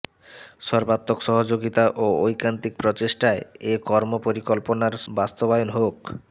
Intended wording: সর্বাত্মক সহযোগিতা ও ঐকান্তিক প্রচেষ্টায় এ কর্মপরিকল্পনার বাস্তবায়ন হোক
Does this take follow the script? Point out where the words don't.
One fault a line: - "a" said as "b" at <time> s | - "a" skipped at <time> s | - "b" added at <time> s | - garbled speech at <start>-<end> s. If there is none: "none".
none